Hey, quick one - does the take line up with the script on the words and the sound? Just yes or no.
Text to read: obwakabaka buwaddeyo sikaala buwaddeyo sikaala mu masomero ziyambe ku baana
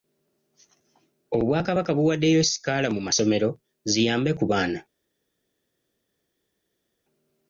no